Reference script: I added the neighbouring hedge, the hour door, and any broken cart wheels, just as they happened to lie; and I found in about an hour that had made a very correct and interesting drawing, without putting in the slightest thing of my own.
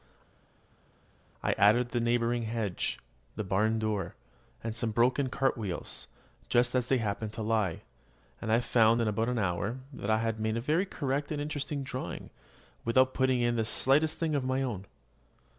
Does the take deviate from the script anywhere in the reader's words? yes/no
yes